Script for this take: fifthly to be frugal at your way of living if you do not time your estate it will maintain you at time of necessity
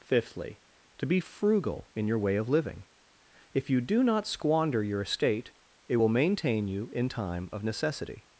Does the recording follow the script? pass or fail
fail